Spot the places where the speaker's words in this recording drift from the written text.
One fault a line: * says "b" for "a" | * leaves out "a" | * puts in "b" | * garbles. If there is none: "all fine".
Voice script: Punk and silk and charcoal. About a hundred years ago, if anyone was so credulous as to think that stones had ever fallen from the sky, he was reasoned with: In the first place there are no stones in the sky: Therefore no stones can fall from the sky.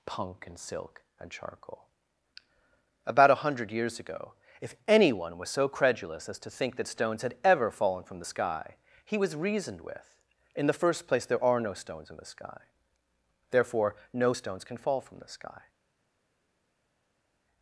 all fine